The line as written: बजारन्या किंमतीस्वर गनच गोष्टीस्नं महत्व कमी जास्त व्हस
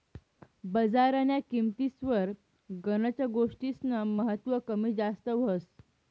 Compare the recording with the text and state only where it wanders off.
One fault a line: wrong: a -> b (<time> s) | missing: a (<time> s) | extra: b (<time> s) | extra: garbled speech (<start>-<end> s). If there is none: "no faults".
no faults